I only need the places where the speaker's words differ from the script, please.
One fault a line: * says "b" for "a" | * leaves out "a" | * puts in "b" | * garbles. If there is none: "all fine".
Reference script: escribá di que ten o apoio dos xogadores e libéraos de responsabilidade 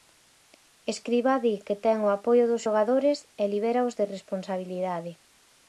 all fine